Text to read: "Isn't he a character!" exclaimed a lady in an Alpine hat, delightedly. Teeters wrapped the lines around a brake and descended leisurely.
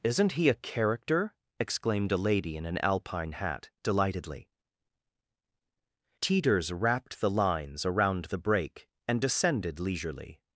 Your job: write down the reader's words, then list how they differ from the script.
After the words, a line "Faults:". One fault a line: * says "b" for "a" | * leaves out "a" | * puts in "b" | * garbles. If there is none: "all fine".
"Isn't he a character!" exclaimed a lady in an Alpine hat, delightedly. Teeters wrapped the lines around the brake and descended leisurely.
Faults:
* says "the" for "a"